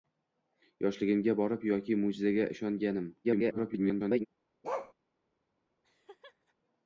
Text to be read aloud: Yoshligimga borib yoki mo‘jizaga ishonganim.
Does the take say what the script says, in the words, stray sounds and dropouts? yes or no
no